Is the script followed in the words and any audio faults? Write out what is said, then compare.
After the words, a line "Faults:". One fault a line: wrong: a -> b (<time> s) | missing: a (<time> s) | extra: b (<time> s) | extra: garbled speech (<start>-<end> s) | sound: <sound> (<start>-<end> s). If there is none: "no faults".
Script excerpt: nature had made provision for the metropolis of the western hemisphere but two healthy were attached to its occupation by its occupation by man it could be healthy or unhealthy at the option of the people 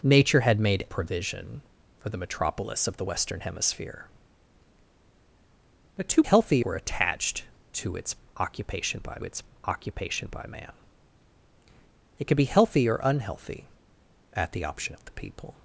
nature had made provision for the metropolis of the western hemisphere but two healthy were attached to its occupation by its occupation by man it could be healthy or unhealthy at the option of the people
Faults:
no faults